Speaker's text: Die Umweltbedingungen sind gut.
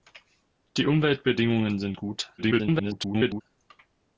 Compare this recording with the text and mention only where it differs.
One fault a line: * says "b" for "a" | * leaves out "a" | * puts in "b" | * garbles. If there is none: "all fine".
* garbles